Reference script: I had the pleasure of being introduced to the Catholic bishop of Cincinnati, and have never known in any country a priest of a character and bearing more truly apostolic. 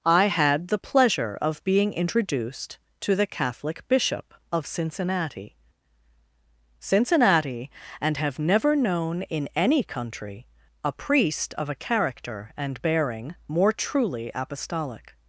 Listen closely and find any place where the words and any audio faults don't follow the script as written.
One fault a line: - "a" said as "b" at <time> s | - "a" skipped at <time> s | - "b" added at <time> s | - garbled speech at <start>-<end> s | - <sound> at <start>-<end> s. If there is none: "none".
- "Cincinnati" added at 6.8 s